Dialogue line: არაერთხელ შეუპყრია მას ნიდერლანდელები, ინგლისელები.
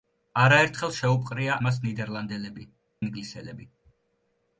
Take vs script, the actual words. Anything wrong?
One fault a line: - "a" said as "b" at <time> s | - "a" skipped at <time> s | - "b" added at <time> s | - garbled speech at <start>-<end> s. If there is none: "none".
none